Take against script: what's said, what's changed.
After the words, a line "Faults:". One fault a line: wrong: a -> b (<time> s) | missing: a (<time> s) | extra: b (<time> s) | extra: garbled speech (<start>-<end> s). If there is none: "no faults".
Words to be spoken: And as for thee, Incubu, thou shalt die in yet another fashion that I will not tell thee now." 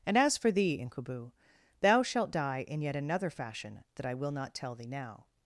And as for thee, Incubu, thou shalt die in yet another fashion that I will not tell thee now."
Faults:
no faults